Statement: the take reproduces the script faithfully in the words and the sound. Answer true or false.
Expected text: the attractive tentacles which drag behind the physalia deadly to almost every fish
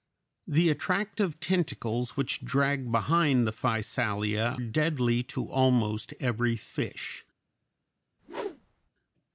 false